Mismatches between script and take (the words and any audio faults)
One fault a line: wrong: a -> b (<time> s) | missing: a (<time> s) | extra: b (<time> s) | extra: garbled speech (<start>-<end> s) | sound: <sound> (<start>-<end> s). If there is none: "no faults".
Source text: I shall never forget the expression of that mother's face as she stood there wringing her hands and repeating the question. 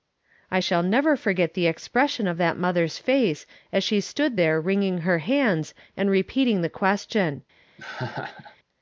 sound: laugh (7.8-8.6 s)